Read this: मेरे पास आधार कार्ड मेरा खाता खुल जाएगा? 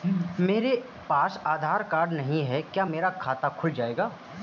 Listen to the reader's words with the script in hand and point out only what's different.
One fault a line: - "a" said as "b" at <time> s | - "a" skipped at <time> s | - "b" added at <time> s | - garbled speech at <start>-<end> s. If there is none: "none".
- "नहीं है क्या" added at 2.1 s